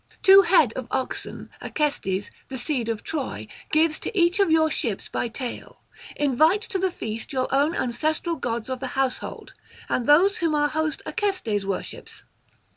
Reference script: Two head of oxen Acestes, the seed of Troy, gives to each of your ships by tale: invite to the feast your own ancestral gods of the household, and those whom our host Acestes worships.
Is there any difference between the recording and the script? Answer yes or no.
no